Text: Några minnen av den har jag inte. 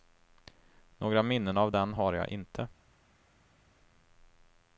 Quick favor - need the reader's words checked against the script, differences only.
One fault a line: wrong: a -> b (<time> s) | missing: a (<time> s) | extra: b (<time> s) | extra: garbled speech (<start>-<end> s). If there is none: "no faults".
no faults